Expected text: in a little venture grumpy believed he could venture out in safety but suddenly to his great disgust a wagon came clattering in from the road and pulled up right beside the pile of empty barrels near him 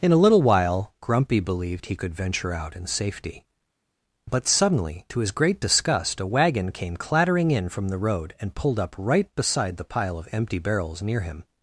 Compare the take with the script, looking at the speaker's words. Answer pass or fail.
fail